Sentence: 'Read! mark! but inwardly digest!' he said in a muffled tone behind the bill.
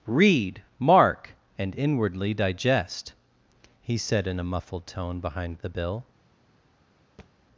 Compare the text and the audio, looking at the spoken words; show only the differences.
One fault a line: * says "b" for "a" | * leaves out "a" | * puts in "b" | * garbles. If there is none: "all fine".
* says "and" for "but"